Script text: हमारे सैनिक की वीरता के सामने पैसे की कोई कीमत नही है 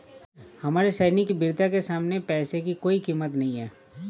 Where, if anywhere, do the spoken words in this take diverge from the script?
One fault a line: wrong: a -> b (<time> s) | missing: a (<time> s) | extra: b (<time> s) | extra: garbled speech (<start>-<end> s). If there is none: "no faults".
no faults